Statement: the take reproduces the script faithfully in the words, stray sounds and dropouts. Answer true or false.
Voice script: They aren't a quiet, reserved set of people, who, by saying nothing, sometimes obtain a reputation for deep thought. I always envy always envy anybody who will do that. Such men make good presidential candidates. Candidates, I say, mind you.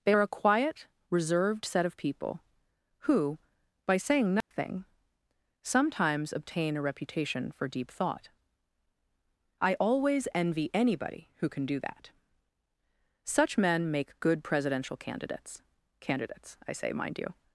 false